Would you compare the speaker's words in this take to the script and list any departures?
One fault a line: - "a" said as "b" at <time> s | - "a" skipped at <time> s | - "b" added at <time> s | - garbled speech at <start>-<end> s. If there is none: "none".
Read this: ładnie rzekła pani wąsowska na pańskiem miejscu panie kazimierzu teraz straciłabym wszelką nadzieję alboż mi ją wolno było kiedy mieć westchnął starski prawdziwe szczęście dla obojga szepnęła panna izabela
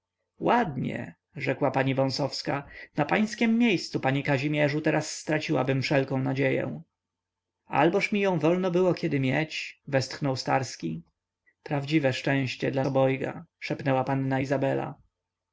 none